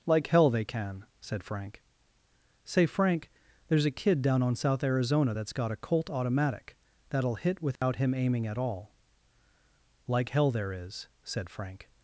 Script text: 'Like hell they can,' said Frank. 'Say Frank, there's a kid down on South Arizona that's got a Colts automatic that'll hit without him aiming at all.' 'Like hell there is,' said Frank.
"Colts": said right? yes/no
no